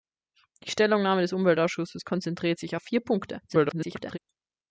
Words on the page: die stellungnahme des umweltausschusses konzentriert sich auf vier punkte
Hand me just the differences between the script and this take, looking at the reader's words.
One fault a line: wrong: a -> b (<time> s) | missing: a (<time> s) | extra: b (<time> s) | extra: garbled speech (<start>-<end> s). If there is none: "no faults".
extra: garbled speech (3.5-4.2 s)